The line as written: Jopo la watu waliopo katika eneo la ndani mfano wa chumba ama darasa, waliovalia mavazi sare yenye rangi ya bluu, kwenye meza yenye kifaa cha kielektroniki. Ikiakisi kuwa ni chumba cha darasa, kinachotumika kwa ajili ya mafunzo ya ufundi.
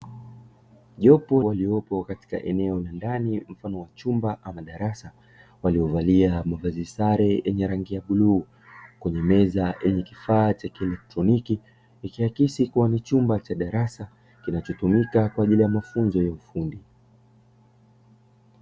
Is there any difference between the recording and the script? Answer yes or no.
yes